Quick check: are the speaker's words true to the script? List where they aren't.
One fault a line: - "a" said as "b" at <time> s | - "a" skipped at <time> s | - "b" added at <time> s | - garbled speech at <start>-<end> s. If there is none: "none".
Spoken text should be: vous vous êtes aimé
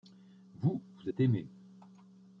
none